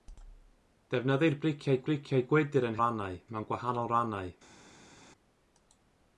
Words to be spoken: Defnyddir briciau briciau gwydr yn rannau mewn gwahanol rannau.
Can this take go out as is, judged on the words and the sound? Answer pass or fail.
pass